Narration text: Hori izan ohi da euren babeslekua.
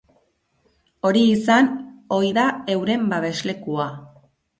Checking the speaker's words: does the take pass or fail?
pass